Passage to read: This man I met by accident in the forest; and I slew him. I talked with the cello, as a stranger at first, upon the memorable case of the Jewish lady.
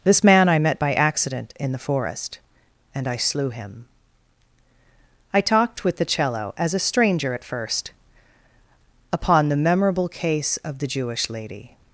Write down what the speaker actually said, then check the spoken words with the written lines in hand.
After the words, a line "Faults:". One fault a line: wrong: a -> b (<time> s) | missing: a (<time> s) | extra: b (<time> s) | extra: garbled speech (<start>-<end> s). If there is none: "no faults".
This man I met by accident in the forest; and I slew him. I talked with the cello, as a stranger at first, upon the memorable case of the Jewish lady.
Faults:
no faults